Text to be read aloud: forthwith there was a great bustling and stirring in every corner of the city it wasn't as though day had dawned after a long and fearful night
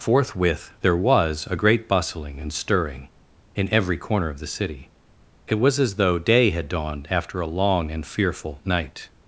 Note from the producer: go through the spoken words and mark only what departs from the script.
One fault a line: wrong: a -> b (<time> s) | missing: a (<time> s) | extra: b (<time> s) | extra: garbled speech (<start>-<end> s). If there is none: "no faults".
wrong: wasn't -> was (5.6 s)